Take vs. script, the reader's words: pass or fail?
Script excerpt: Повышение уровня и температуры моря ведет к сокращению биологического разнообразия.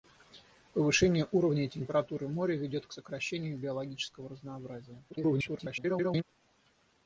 fail